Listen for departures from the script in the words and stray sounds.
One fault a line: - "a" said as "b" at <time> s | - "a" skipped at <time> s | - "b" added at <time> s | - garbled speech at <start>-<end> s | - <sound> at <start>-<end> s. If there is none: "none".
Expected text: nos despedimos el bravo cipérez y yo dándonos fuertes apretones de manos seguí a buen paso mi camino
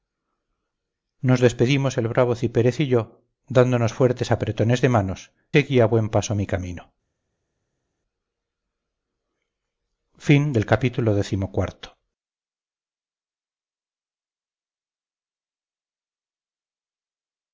none